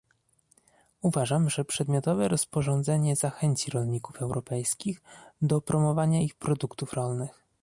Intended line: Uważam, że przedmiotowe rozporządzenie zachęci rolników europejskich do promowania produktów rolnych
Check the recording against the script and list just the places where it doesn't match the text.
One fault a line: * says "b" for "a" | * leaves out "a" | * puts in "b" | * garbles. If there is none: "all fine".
* puts in "ich"